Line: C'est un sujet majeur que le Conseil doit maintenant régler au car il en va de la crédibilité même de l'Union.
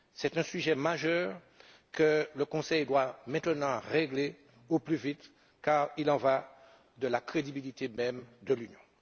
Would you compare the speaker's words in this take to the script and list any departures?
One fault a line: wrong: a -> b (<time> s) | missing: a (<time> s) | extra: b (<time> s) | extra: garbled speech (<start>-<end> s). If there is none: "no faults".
extra: plus vite (4.8 s)